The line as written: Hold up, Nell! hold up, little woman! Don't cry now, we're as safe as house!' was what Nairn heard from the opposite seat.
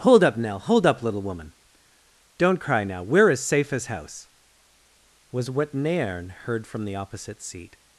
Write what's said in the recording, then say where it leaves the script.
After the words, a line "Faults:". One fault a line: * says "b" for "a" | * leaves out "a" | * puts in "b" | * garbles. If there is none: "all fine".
Hold up, Nell! hold up, little woman! Don't cry now, we're as safe as house!' was what Nairn heard from the opposite seat.
Faults:
all fine